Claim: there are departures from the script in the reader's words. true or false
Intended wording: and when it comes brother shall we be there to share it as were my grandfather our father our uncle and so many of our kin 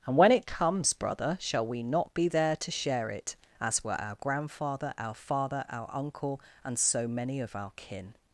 true